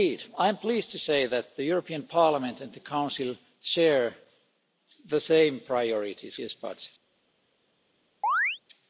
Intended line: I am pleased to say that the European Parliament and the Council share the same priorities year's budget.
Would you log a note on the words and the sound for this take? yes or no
yes